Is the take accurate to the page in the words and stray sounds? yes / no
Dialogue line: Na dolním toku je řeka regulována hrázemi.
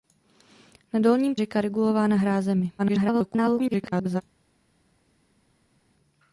no